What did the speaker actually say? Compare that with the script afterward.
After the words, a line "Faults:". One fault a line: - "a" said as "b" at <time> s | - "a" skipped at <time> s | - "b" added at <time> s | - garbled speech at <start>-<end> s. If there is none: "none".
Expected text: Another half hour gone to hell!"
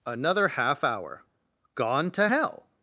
Another half hour gone to hell!"
Faults:
none